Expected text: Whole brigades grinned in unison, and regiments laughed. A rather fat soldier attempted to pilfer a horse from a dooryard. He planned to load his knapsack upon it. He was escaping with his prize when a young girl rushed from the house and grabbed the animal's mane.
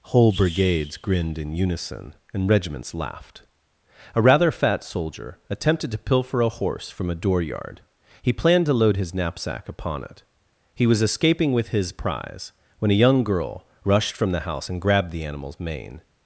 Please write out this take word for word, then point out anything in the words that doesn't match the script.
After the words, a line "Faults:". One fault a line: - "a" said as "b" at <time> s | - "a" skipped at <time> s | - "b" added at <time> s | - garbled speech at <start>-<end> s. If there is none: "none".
Whole brigades grinned in unison, and regiments laughed. A rather fat soldier attempted to pilfer a horse from a dooryard. He planned to load his knapsack upon it. He was escaping with his prize when a young girl rushed from the house and grabbed the animal's mane.
Faults:
none